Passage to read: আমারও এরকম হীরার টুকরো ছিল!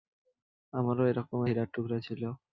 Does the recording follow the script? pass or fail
pass